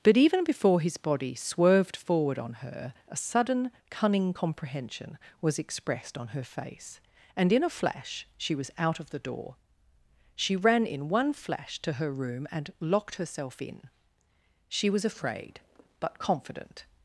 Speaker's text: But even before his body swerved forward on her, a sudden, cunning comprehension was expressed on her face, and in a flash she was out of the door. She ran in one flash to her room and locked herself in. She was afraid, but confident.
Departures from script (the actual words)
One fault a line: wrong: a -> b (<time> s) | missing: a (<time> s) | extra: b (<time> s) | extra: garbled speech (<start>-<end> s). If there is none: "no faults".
no faults